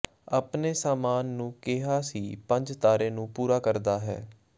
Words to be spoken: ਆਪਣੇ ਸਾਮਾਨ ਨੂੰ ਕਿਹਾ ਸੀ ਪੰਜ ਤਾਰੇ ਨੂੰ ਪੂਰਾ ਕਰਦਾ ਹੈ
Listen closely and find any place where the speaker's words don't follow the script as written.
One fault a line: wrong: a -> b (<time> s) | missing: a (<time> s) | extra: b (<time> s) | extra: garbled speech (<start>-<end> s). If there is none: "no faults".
no faults